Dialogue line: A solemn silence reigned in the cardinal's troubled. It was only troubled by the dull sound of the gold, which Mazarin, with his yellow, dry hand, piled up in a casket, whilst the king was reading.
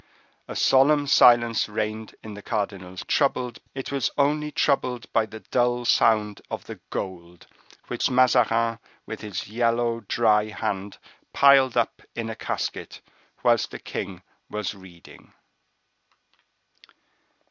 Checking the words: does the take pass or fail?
pass